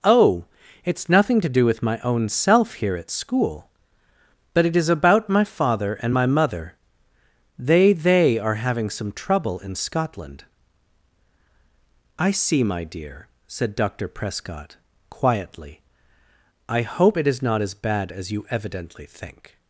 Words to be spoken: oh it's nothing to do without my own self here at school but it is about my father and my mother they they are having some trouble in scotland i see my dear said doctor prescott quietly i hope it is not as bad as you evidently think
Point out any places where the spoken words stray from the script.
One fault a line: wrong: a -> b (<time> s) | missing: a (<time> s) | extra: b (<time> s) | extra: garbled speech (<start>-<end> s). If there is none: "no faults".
wrong: without -> with (1.6 s)